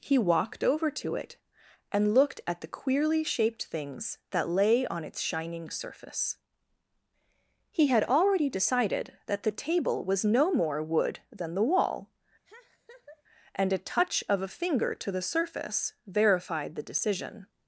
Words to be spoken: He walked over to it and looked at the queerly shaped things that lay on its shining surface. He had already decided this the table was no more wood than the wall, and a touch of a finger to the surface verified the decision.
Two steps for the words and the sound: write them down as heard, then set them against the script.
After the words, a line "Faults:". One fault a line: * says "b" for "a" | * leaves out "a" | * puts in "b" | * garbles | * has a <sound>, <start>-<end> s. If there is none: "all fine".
He walked over to it and looked at the queerly shaped things that lay on its shining surface. He had already decided that the table was no more wood than the wall, and a touch of a finger to the surface verified the decision.
Faults:
* says "that" for "this"
* has a laugh, 12.4-13.2 s